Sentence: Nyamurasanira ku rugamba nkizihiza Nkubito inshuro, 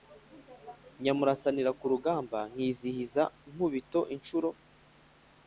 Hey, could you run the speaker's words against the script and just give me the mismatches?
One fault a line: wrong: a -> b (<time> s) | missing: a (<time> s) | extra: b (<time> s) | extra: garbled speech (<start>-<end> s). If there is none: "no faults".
no faults